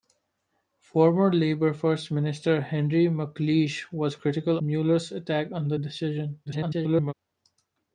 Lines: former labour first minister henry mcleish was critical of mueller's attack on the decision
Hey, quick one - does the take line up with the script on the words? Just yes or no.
no